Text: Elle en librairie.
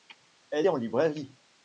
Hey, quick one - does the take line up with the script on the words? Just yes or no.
yes